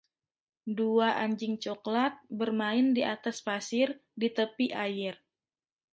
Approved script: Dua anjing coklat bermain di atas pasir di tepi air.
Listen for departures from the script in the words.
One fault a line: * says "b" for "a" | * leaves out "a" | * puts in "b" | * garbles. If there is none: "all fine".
all fine